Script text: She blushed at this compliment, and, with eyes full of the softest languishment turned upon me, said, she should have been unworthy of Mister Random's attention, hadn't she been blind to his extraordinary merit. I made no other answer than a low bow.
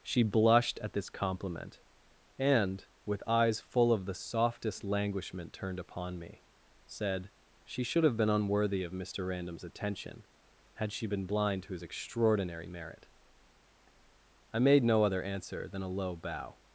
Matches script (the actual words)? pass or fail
fail